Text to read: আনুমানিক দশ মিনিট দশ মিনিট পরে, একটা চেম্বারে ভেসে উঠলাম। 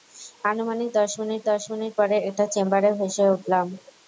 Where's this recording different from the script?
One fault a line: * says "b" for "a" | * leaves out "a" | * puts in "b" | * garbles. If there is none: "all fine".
all fine